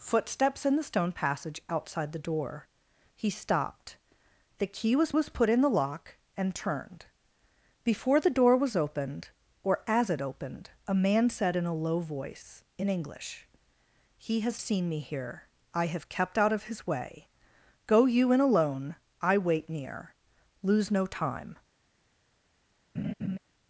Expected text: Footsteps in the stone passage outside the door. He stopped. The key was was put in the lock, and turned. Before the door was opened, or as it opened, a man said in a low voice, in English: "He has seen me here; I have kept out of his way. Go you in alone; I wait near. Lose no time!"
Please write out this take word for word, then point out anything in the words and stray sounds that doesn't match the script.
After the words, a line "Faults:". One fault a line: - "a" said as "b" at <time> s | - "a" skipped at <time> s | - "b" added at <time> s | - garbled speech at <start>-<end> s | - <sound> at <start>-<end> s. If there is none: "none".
Footsteps in the stone passage outside the door. He stopped. The key was was put in the lock, and turned. Before the door was opened, or as it opened, a man said in a low voice, in English: "He has seen me here; I have kept out of his way. Go you in alone; I wait near. Lose no time!"
Faults:
- laugh at 22.9-23.4 s